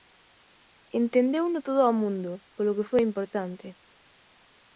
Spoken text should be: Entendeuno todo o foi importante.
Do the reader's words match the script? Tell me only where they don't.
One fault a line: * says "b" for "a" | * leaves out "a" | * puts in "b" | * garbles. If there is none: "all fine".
* puts in "mundo polo que"